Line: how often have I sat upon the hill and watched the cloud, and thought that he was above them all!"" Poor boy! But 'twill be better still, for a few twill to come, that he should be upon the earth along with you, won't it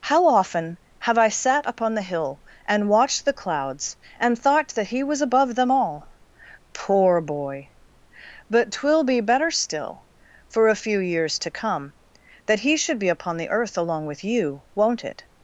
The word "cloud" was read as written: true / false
false